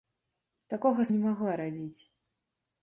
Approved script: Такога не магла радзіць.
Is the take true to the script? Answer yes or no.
yes